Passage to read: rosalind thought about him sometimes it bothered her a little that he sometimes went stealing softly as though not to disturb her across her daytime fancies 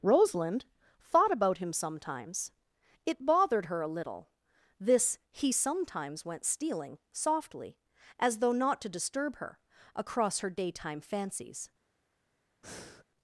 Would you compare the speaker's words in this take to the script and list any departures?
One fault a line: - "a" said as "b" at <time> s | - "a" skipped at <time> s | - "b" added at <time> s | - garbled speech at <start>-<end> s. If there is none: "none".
- "that" said as "this" at 4.8 s